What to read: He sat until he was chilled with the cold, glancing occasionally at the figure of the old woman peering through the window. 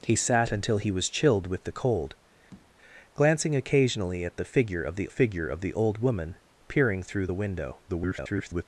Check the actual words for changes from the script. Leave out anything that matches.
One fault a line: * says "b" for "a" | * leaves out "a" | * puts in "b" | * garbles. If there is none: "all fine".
* puts in "figure of the"
* garbles